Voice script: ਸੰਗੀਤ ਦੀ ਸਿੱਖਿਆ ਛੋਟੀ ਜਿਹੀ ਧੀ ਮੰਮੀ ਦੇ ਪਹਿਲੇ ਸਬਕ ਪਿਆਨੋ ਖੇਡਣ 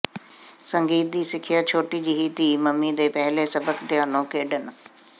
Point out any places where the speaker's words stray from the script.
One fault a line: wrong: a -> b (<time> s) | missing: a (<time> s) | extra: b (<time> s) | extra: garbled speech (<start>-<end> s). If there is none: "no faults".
no faults